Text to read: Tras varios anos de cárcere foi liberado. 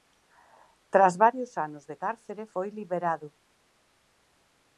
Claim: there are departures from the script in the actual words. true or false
false